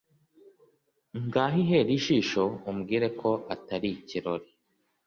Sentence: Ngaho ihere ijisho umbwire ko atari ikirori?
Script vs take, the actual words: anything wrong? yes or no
no